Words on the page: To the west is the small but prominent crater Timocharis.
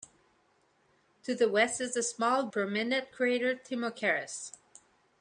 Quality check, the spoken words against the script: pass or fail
fail